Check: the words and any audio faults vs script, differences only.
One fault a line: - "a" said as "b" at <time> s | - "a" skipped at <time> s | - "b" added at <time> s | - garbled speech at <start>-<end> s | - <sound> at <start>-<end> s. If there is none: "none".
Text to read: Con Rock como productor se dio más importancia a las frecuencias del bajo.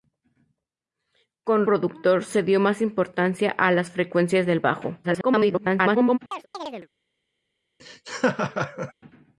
- "Rock como" skipped at 1.7 s
- garbled speech at 5.0-6.2 s
- chirp at 6.3-6.9 s
- laugh at 7.8-8.9 s